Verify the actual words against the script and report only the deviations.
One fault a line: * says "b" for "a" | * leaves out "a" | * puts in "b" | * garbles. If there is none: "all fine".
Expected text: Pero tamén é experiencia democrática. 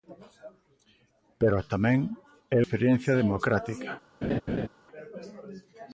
all fine